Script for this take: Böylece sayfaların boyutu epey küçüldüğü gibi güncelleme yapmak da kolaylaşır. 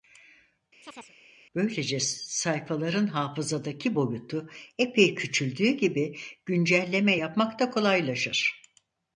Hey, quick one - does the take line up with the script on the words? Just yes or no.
no